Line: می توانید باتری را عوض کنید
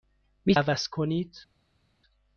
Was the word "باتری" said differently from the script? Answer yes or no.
yes